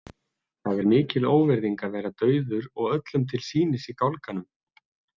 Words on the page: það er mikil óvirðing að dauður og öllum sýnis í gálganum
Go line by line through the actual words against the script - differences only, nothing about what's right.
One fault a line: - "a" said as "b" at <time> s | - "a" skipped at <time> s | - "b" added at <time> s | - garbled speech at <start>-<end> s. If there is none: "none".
- "vera" added at 2.0 s
- "til" added at 3.3 s